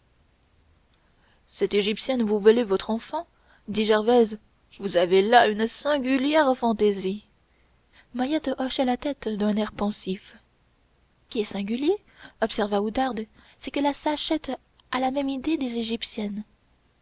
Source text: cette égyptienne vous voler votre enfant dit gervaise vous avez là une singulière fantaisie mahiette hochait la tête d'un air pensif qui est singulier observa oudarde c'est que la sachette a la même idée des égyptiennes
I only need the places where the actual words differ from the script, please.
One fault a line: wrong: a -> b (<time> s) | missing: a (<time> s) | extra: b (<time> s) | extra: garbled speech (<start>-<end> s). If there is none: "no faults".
no faults